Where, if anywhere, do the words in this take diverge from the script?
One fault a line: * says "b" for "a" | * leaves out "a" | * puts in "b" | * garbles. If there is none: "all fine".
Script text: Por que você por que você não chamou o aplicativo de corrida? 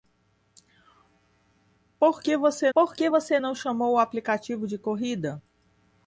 all fine